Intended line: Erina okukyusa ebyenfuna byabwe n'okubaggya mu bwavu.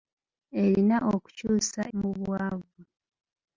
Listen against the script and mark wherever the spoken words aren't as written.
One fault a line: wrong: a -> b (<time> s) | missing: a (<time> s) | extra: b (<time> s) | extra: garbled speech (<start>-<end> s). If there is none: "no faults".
missing: ebyenfuna byabwe n'okubaggya (1.8 s)